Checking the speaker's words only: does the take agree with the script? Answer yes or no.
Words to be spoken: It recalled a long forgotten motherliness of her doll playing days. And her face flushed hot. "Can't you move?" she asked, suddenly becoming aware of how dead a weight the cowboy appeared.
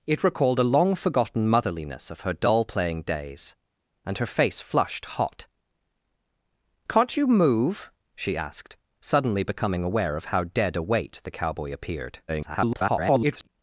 no